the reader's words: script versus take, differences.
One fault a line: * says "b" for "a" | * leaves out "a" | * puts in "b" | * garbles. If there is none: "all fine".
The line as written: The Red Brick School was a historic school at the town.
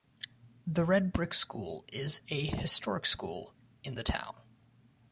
* says "is" for "was"
* says "in" for "at"